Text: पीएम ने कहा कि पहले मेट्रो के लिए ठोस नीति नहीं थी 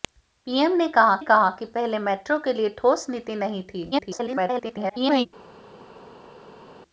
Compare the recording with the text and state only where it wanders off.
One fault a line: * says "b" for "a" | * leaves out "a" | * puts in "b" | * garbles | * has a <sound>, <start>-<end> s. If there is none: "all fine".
* puts in "कहा"
* garbles